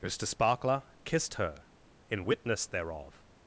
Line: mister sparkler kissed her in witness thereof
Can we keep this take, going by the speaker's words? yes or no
yes